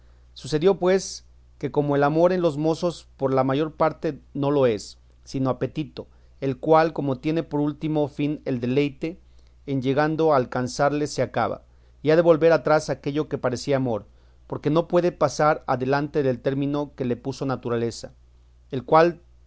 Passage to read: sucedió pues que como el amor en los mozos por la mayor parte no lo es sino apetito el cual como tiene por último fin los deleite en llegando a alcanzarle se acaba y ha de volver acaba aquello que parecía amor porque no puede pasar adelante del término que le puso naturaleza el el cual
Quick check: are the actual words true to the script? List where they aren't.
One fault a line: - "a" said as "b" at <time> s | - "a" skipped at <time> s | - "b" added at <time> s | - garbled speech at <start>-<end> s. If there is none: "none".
- "los" said as "el" at 8.4 s
- "acaba" said as "atrás" at 12.5 s
- "el" skipped at 18.8 s